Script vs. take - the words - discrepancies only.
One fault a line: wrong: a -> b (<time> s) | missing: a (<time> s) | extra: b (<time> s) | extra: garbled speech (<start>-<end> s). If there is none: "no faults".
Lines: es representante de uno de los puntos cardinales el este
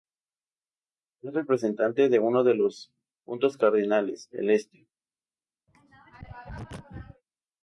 no faults